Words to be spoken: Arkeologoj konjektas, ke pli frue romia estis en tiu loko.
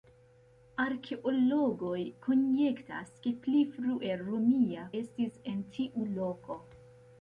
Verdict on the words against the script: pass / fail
pass